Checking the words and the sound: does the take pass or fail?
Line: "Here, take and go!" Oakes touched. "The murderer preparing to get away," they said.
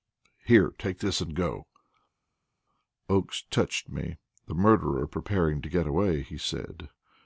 fail